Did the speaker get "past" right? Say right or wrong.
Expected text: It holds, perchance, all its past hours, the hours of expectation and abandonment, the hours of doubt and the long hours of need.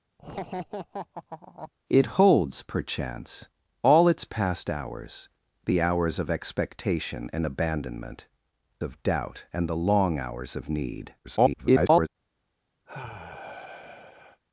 right